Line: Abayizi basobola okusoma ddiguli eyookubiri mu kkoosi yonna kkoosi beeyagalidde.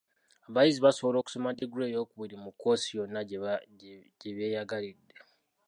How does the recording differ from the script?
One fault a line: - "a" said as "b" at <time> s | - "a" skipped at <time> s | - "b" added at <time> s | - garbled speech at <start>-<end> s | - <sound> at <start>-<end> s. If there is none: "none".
- dropout at 1.6-1.6 s
- "kkoosi" said as "gye" at 4.2 s